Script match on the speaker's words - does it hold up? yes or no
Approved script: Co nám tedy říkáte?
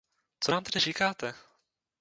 yes